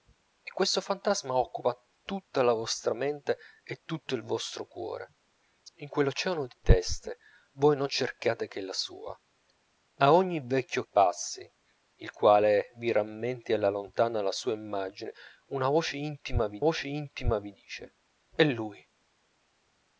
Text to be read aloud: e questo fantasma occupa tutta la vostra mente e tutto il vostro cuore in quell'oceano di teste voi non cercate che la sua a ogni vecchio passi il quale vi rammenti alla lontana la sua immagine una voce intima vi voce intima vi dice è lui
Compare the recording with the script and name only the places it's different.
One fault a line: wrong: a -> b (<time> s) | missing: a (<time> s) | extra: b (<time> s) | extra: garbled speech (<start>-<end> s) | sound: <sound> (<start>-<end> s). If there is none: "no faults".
no faults